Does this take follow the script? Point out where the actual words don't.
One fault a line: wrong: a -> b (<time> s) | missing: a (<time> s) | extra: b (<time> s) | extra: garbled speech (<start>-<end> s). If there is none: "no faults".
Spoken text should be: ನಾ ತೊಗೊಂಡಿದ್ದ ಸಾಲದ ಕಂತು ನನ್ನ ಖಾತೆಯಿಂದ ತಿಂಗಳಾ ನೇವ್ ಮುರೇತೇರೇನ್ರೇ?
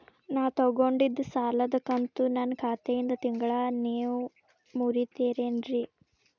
no faults